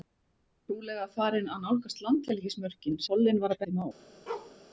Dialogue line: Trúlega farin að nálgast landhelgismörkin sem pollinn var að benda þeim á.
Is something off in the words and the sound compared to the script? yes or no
yes